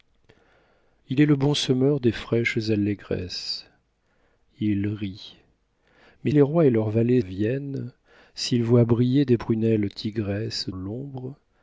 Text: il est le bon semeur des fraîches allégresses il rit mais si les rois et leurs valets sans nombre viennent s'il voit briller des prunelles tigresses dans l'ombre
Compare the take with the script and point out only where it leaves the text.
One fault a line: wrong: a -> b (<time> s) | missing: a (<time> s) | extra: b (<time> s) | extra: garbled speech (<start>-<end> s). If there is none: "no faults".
missing: si (6.3 s)
missing: sans nombre (7.2 s)
missing: dans (10.7 s)